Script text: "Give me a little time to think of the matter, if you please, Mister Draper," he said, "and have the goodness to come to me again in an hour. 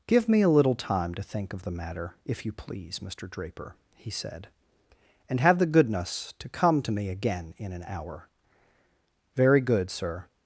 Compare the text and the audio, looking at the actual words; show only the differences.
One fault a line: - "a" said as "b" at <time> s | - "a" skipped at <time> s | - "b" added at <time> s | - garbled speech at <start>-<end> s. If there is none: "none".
- "Very good sir" added at 9.3 s